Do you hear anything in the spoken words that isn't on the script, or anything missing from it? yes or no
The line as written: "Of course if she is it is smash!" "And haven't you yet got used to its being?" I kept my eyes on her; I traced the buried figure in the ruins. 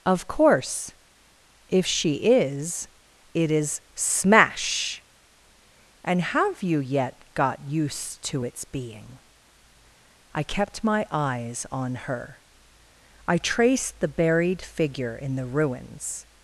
yes